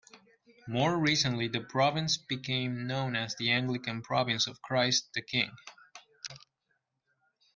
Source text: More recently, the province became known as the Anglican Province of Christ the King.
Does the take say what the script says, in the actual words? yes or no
yes